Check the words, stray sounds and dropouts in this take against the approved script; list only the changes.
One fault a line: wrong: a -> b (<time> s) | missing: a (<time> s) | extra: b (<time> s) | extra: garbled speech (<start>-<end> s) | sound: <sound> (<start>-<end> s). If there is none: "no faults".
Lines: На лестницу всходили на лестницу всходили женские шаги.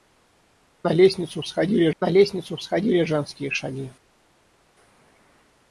no faults